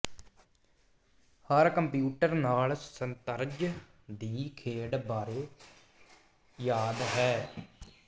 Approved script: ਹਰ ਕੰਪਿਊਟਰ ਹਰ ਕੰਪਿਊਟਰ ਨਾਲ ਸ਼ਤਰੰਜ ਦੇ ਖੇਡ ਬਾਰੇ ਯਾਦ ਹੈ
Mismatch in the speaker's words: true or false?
true